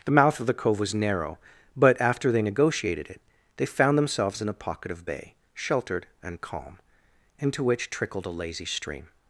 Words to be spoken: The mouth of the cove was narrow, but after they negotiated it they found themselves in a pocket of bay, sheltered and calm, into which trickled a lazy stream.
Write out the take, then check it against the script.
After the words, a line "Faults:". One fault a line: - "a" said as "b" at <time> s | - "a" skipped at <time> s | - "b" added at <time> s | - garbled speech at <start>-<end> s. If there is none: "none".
The mouth of the cove was narrow, but after they negotiated it they found themselves in a pocket of bay, sheltered and calm, into which trickled a lazy stream.
Faults:
none